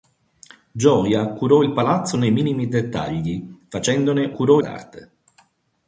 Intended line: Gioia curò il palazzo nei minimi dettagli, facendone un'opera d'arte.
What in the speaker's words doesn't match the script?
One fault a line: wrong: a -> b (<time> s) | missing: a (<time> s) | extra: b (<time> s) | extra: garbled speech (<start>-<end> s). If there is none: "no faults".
wrong: un'opera -> curò (4.3 s)